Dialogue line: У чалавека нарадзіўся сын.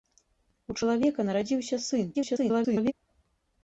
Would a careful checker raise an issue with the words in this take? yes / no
yes